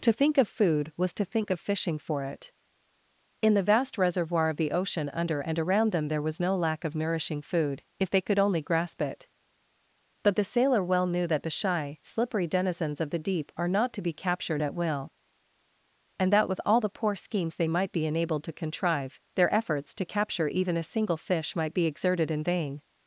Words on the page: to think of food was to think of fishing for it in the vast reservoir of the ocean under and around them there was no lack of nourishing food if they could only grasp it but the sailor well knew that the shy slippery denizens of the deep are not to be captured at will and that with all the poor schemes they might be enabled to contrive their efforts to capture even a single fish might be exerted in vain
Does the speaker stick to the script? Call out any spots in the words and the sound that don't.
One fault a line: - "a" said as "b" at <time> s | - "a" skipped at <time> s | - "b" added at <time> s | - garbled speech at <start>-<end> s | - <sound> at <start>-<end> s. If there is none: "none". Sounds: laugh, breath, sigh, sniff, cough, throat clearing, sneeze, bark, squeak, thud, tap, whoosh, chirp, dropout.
none